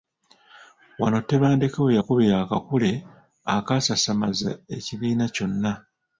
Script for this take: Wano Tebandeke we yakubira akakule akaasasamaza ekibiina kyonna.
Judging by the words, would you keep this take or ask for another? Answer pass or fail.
pass